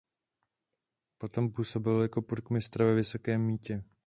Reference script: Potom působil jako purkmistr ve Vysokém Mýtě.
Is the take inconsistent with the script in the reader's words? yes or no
no